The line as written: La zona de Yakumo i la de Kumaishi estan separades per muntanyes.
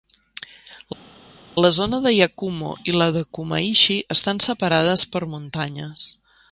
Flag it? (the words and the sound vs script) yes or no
no